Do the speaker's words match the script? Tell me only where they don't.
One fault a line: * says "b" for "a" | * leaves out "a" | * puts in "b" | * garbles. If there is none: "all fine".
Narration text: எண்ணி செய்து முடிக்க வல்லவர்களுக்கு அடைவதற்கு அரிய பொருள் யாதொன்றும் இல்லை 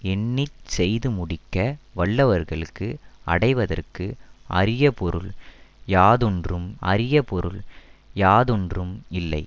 * puts in "அரிய பொருள் யாதொன்றும்"